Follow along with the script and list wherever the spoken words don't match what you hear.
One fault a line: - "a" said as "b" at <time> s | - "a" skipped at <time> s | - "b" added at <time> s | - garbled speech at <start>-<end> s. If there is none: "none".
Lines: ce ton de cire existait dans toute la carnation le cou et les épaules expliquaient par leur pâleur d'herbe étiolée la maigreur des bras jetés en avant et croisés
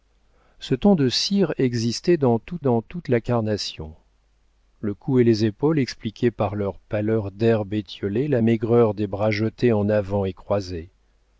- "dans toute" added at 2.6 s